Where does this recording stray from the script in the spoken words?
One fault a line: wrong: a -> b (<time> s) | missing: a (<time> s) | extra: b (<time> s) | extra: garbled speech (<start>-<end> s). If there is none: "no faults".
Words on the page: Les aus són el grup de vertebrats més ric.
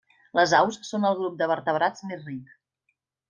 no faults